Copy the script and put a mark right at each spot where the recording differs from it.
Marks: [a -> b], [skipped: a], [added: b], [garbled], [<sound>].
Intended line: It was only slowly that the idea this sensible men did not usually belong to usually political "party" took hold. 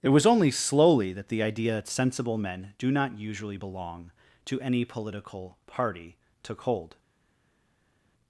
It was only slowly that the idea [this -> that] sensible men [did -> do] not usually belong to [usually -> any] political "party" took hold.